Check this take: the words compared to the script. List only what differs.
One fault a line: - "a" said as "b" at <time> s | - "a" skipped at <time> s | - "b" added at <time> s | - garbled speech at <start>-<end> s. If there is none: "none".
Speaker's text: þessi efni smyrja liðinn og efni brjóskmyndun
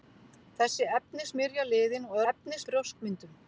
none